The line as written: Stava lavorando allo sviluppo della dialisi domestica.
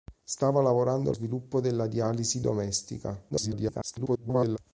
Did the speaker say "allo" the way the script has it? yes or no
no